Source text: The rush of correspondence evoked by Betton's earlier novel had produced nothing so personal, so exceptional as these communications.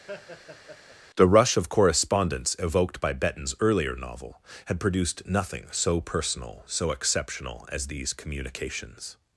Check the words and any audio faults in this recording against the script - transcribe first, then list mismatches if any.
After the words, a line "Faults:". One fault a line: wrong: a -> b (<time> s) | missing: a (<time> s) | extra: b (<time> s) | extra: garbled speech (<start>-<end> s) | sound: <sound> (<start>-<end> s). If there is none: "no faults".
The rush of correspondence evoked by Betton's earlier novel had produced nothing so personal, so exceptional as these communications.
Faults:
sound: laugh (0.1-1.0 s)